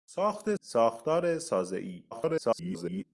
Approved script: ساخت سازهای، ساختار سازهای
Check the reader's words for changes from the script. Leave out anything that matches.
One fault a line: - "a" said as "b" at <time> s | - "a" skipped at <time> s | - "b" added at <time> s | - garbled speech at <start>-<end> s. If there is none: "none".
- "سازهای" skipped at 0.6 s
- garbled speech at 2.1-3.0 s